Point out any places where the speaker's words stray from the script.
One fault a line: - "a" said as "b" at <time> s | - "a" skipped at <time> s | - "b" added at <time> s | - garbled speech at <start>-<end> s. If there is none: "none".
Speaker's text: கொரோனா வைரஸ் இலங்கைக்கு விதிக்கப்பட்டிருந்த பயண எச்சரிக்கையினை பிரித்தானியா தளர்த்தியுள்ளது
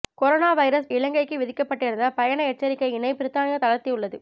none